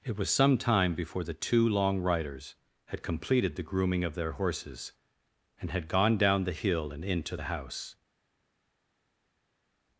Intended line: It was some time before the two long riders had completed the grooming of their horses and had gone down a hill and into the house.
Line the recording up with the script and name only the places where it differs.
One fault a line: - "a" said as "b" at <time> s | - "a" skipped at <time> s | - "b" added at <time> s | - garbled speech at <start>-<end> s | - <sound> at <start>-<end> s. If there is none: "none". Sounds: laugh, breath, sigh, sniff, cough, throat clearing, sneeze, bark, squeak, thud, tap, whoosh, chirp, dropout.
- "a" said as "the" at 6.5 s